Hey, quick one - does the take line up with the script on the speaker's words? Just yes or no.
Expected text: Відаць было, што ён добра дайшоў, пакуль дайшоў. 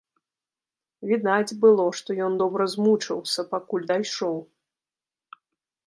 no